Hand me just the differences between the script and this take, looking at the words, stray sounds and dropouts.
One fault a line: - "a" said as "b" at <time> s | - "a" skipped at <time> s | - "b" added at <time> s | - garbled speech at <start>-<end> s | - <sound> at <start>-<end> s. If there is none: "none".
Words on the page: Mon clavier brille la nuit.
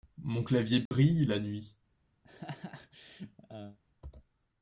- dropout at 0.9-0.9 s
- laugh at 2.2-3.8 s